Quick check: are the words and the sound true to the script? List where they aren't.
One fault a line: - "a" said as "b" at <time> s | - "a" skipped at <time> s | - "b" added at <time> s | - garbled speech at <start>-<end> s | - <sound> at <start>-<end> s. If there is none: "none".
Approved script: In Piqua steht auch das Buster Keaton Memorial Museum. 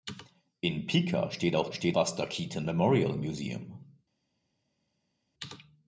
- "das" said as "steht" at 1.7 s